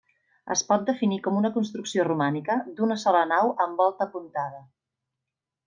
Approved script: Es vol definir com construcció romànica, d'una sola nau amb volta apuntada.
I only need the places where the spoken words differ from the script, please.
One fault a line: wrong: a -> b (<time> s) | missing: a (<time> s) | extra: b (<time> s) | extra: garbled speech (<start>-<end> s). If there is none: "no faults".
wrong: vol -> pot (0.7 s)
extra: una (1.4 s)